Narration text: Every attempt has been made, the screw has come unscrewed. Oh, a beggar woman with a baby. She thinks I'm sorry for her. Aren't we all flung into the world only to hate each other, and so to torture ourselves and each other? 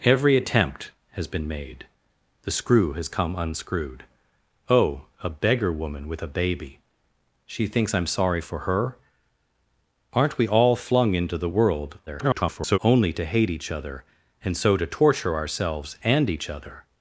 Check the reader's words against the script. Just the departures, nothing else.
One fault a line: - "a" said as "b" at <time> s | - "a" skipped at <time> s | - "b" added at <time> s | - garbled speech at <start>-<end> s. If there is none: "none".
- garbled speech at 12.1-12.8 s